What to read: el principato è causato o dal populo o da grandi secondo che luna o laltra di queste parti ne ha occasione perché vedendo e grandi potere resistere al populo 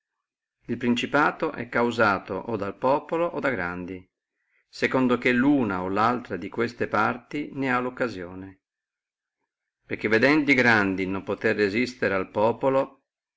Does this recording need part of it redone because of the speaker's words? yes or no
yes